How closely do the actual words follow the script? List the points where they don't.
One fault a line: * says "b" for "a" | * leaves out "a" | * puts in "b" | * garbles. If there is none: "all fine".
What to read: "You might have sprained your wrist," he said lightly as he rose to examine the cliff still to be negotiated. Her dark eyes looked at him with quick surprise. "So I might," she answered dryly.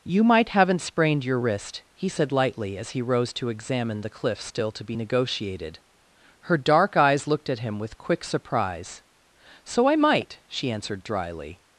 * says "haven't" for "have"